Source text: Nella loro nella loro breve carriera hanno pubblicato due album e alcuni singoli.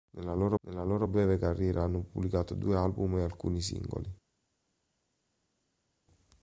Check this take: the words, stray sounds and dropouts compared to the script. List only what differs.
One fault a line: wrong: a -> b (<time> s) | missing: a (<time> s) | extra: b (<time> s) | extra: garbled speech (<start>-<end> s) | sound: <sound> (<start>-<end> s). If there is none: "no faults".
no faults